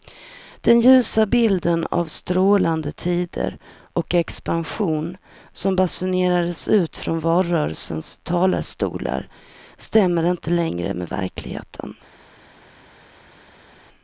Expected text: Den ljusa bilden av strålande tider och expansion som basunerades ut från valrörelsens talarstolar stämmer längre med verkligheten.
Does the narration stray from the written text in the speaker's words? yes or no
yes